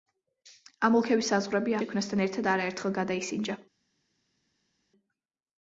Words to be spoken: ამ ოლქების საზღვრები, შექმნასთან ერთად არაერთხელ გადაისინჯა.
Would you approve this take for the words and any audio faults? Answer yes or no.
yes